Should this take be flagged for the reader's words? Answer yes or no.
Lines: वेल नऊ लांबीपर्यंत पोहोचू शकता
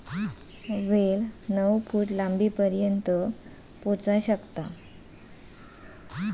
yes